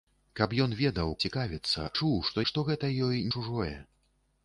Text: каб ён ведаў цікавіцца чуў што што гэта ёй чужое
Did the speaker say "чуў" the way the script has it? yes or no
yes